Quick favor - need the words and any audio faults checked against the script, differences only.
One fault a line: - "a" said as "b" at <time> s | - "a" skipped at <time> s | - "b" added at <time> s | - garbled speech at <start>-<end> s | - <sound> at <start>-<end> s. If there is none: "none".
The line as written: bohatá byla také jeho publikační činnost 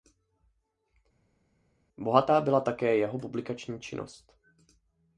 none